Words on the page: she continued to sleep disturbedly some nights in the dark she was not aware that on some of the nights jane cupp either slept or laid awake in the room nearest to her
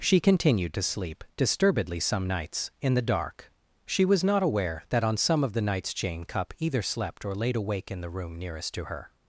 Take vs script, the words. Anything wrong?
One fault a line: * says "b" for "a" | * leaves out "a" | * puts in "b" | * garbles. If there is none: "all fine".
all fine